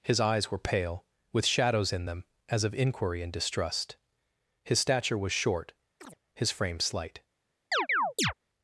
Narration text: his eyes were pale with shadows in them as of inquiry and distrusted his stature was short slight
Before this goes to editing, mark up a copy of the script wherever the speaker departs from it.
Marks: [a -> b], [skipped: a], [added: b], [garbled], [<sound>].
his eyes were pale with shadows in them as of inquiry and [distrusted -> distrust] his stature was short [chirp] [added: his frame] slight [chirp]